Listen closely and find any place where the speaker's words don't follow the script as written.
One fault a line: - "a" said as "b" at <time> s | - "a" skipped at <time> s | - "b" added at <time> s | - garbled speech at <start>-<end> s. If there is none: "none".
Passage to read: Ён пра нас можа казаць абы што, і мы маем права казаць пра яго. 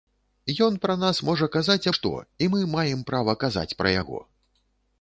- "абы" skipped at 1.9 s